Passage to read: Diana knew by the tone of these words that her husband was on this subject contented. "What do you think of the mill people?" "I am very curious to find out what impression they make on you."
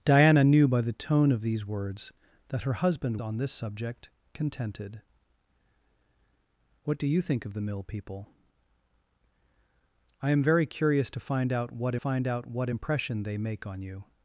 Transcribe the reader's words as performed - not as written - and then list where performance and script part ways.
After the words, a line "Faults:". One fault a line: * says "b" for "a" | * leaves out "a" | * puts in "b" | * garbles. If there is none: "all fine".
Diana knew by the tone of these words that her husband on this subject contented. "What do you think of the mill people?" "I am very curious to find out what find out what impression they make on you."
Faults:
* leaves out "was"
* puts in "find out what"